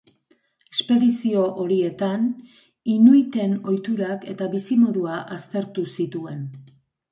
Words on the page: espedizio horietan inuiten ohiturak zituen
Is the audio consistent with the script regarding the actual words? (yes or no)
no